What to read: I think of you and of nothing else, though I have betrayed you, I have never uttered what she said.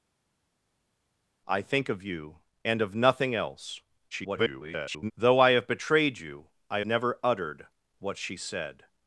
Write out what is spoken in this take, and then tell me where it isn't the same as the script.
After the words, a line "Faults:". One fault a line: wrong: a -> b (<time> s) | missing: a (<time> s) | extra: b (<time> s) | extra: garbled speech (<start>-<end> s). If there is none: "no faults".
I think of you and of nothing else, [garbled] though I have betrayed you, I never uttered what she said.
Faults:
extra: garbled speech (4.1-5.1 s)
missing: have (6.8 s)